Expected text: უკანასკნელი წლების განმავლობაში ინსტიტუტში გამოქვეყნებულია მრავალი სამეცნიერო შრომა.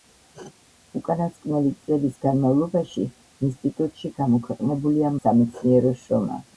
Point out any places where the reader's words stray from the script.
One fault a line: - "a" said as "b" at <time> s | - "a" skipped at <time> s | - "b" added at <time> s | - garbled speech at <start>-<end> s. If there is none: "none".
- "მრავალი" skipped at 5.1 s